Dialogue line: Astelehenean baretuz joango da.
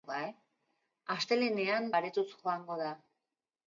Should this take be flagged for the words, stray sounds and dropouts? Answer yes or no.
no